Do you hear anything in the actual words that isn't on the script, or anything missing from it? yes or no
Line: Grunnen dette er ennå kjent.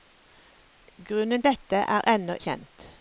no